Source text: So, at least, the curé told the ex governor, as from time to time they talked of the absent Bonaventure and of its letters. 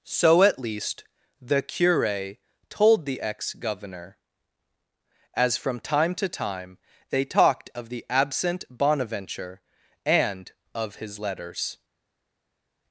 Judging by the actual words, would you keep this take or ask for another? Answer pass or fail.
fail